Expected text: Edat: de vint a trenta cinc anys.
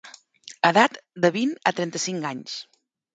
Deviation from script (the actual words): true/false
false